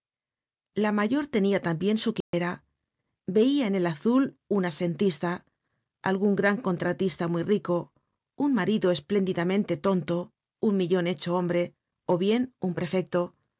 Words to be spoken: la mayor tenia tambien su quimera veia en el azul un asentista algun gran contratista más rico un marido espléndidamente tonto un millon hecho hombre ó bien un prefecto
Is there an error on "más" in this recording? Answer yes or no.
yes